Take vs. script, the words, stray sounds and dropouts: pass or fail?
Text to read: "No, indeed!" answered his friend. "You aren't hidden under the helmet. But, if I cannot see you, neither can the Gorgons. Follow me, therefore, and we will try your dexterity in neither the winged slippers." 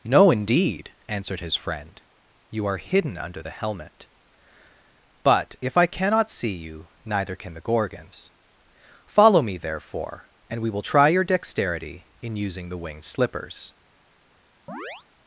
fail